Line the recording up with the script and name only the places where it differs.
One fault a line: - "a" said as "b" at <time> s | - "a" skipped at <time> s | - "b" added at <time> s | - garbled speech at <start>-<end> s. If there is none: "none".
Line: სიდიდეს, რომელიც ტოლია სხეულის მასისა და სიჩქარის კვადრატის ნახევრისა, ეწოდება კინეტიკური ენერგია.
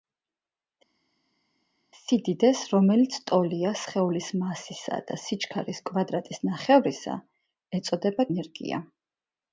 - "კინეტიკური" skipped at 8.3 s